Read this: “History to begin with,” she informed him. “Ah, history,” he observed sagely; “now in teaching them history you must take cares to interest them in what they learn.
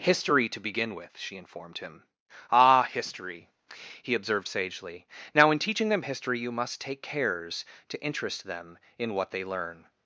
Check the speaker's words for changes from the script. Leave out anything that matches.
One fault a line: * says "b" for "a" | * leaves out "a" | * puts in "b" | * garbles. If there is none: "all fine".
all fine